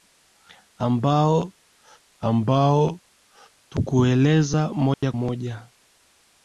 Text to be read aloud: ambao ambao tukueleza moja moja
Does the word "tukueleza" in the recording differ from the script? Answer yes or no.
no